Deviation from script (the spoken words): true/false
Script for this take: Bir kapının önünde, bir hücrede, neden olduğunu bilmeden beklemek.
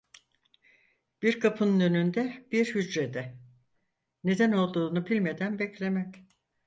false